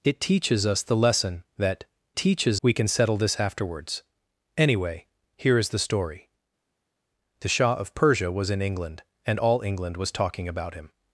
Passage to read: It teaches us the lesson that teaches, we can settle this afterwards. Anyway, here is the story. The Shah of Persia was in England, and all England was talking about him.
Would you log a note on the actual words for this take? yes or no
no